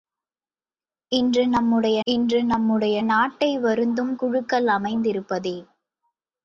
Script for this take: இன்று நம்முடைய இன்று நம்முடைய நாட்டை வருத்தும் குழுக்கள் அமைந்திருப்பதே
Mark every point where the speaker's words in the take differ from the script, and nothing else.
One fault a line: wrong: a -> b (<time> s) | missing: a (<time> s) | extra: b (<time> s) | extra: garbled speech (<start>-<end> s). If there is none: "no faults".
no faults